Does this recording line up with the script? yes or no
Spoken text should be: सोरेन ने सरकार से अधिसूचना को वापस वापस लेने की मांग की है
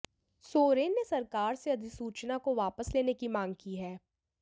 no